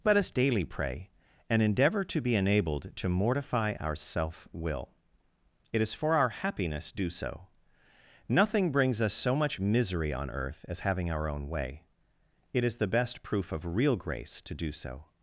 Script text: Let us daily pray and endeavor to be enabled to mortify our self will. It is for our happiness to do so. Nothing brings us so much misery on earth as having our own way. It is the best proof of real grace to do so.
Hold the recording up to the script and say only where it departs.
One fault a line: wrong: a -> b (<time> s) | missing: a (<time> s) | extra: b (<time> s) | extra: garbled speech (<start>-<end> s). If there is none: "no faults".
missing: to (6.9 s)